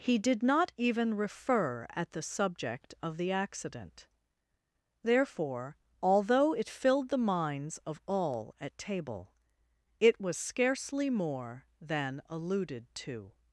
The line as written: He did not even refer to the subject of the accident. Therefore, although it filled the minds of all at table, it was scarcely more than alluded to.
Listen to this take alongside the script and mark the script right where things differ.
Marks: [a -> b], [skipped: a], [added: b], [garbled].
He did not even refer [to -> at] the subject of the accident. Therefore, although it filled the minds of all at table, it was scarcely more than alluded to.